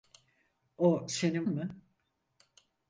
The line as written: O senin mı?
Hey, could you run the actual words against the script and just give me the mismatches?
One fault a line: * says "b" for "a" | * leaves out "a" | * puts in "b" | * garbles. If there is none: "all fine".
all fine